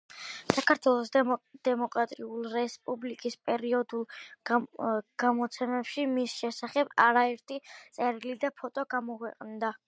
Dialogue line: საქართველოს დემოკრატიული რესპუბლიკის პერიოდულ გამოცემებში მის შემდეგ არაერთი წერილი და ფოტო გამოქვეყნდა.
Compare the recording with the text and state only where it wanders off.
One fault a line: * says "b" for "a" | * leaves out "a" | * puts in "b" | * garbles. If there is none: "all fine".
* says "შესახებ" for "შემდეგ"